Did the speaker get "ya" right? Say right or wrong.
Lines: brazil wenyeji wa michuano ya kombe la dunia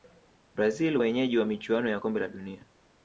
right